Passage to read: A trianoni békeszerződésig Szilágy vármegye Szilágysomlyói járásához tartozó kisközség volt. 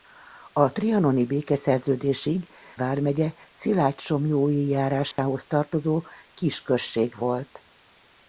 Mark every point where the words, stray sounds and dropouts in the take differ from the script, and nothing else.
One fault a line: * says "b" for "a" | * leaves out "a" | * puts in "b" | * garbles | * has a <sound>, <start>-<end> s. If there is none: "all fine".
* leaves out "Szilágy"
* has a dropout, 5.1-5.2 s